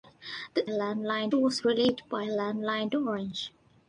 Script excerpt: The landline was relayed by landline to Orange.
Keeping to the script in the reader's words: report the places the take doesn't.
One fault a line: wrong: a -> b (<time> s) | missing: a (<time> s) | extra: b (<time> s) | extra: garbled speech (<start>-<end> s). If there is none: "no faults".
no faults